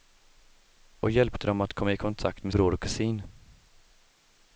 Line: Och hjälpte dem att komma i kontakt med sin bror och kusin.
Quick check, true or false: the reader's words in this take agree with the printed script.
false